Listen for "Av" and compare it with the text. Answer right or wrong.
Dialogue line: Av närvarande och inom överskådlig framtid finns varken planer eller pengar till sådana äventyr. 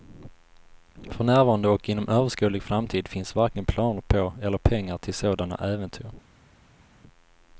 wrong